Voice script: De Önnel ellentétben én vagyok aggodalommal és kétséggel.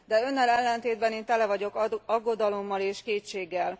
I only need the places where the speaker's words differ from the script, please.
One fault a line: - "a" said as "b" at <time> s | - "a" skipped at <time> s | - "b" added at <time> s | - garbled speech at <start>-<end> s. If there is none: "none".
- "tele" added at 1.2 s